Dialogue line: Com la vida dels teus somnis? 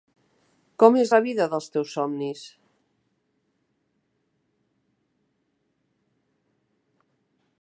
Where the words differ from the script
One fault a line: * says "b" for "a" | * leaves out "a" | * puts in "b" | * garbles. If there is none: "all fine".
* puts in "és"